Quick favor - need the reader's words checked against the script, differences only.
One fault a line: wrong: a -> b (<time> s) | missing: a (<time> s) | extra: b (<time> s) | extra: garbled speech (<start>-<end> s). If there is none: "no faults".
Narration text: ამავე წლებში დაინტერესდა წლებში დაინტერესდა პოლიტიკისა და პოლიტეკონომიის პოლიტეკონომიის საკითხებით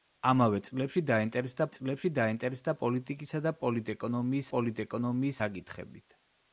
no faults